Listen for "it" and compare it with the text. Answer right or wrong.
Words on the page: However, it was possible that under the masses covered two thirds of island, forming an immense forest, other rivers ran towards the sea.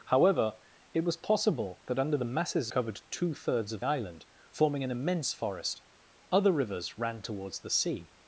right